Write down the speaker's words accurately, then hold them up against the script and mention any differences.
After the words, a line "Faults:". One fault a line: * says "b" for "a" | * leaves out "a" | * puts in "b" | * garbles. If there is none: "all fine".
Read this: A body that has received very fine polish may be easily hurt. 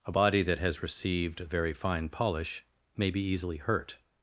A body that has received very fine polish may be easily hurt.
Faults:
all fine